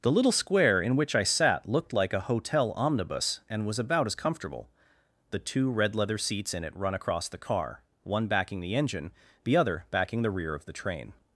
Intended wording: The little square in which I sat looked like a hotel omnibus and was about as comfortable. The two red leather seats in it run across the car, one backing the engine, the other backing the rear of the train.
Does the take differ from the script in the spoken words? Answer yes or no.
no